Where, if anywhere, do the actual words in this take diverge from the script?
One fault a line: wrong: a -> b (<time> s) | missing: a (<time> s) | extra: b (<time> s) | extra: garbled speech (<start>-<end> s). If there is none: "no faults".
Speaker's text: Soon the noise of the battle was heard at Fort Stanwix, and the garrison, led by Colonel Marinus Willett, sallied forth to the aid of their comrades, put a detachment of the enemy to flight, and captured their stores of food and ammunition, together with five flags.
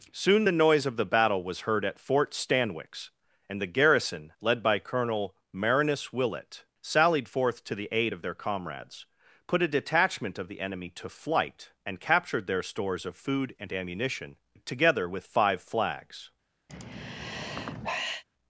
no faults